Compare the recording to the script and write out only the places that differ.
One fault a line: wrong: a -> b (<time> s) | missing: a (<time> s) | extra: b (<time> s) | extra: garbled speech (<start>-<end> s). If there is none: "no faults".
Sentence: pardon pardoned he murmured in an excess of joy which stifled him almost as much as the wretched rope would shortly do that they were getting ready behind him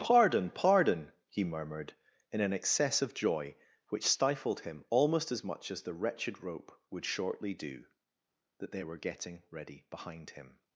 wrong: pardoned -> pardon (0.5 s)